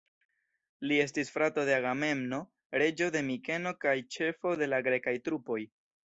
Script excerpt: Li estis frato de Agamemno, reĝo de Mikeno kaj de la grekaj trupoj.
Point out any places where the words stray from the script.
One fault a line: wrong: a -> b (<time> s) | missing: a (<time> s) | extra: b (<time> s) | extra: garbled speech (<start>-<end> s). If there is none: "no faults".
extra: ĉefo (4.2 s)